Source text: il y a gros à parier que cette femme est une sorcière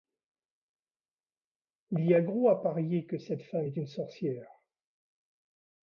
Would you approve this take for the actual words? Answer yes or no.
yes